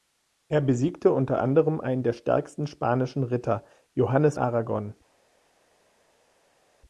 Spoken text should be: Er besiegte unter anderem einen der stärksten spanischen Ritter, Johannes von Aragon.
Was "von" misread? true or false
true